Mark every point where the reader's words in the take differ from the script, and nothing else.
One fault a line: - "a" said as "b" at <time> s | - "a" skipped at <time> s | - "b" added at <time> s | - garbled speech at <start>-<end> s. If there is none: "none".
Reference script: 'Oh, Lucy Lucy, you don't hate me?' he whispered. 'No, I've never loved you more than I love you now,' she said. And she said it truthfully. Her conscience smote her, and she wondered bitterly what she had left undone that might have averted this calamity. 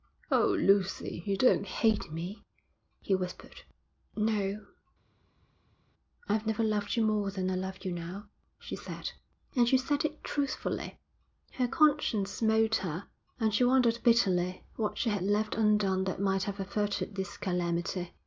- "Lucy" skipped at 1.2 s